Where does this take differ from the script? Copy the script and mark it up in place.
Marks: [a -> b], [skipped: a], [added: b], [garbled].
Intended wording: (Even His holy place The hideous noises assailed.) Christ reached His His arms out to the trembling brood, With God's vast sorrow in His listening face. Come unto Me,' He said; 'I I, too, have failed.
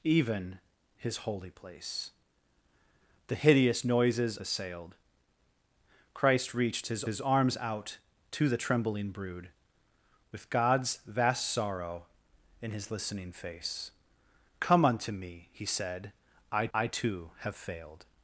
(Even His holy place The hideous noises assailed.) Christ reached His His arms out to the trembling brood, With God's vast sorrow in His listening face. Come unto Me,' He said; 'I I, too, have failed.